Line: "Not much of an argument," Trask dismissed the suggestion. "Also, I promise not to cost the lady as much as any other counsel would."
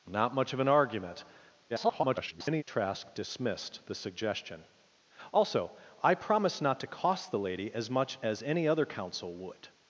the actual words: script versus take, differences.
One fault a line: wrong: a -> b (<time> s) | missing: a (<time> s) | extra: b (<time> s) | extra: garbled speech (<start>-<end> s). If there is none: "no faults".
extra: garbled speech (1.7-2.6 s)